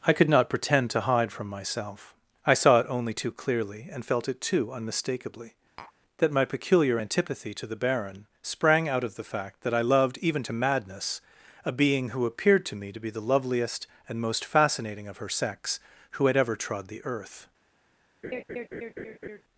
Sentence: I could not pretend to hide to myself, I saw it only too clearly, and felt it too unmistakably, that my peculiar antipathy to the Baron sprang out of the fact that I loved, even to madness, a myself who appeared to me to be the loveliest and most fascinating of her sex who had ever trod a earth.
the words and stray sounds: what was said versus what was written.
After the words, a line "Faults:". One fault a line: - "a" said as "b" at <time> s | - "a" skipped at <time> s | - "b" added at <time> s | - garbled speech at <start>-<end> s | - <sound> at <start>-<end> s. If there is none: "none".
I could not pretend to hide from myself, I saw it only too clearly, and felt it too unmistakably, that my peculiar antipathy to the Baron sprang out of the fact that I loved, even to madness, a being who appeared to me to be the loveliest and most fascinating of her sex who had ever trod the earth.
Faults:
- "to" said as "from" at 1.3 s
- tap at 5.8-5.9 s
- "myself" said as "being" at 11.7 s
- "a" said as "the" at 16.9 s
- laugh at 18.2-19.4 s